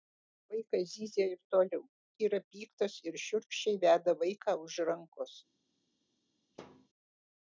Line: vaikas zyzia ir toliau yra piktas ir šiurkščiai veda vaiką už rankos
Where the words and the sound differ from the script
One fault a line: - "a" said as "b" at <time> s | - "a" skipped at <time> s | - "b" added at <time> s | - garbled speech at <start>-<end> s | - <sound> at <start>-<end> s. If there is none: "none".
- thud at 6.5-6.9 s